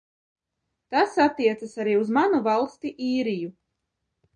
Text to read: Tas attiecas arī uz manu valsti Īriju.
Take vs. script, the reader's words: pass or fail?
pass